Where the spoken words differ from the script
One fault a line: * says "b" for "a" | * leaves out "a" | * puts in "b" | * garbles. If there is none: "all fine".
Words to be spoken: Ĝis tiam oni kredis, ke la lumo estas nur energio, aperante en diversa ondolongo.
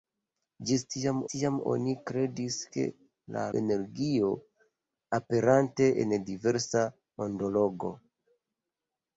* puts in "tiam"
* leaves out "lumo estas nur"